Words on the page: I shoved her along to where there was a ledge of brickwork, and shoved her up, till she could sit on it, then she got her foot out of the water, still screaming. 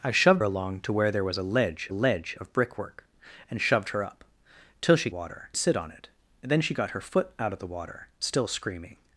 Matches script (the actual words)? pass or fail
fail